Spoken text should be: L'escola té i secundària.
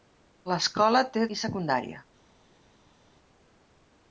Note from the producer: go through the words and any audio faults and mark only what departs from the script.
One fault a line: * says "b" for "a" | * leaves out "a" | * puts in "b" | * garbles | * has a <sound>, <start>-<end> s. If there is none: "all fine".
all fine